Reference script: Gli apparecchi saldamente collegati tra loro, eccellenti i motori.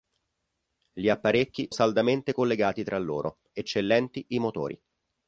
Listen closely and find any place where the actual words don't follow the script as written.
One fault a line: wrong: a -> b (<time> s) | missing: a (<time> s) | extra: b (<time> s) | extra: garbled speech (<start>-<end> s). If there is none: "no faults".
no faults